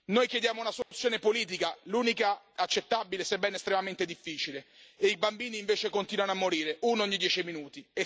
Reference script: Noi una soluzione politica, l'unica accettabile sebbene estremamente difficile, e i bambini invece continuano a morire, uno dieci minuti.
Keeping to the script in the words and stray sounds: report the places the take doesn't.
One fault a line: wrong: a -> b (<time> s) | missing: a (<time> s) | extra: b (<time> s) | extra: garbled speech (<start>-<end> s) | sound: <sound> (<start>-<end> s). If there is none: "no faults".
extra: chiediamo (0.3 s)
sound: dropout (0.8-0.9 s)
extra: ogni (7.0 s)